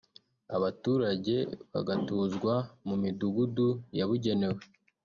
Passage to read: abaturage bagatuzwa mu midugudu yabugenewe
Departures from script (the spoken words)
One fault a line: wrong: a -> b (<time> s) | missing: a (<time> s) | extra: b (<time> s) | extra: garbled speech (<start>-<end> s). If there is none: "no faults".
no faults